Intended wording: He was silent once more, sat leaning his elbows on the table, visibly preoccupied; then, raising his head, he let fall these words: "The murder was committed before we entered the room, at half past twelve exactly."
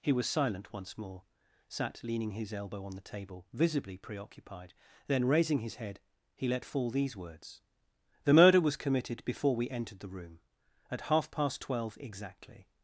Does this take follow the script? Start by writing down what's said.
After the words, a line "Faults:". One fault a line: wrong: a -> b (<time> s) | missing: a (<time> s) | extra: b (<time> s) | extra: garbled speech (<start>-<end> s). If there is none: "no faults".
He was silent once more, sat leaning his elbow on the table, visibly preoccupied; then, raising his head, he let fall these words: "The murder was committed before we entered the room, at half past twelve exactly."
Faults:
wrong: elbows -> elbow (2.5 s)